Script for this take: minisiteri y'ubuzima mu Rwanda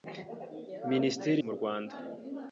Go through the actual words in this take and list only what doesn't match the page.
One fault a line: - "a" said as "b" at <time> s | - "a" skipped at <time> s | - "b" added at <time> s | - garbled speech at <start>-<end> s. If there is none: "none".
- "y'ubuzima" skipped at 1.4 s